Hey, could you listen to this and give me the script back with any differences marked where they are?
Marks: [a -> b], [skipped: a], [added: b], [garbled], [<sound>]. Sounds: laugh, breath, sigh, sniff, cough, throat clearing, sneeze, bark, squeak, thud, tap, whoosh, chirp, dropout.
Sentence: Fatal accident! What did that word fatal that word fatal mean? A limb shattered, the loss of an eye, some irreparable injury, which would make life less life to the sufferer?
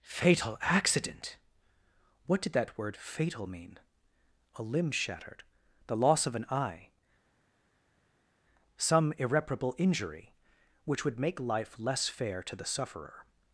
Fatal accident! What did that word fatal [skipped: that word fatal] mean? A limb shattered, the loss of an eye, some irreparable injury, which would make life less [life -> fair] to the sufferer?